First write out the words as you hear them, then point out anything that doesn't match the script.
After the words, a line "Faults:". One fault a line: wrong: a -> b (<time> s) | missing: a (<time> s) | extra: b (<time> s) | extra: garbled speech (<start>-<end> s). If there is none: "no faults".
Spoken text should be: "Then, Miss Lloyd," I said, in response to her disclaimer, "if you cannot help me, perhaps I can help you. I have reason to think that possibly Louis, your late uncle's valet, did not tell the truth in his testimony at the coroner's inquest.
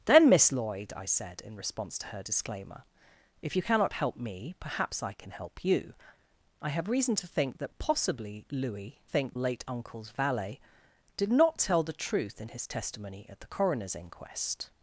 "Then, Miss Lloyd," I said, in response to her disclaimer, "if you cannot help me, perhaps I can help you. I have reason to think that possibly Louis, think late uncle's valet, did not tell the truth in his testimony at the coroner's inquest.
Faults:
wrong: your -> think (9.0 s)